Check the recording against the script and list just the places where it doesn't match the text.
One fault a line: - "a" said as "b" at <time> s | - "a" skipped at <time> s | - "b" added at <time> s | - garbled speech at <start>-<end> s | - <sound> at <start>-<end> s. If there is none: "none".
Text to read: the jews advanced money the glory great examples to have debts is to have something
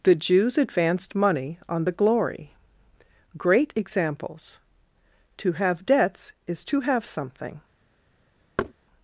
- "on" added at 1.7 s
- thud at 8.6-8.7 s